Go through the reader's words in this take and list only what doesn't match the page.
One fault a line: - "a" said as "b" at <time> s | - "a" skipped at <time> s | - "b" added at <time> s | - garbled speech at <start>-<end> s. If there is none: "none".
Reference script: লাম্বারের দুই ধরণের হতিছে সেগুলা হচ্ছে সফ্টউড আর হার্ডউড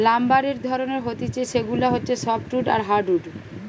- "দুই" skipped at 0.6 s